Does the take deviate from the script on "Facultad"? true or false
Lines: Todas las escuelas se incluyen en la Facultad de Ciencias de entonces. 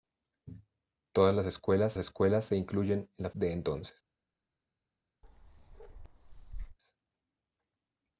true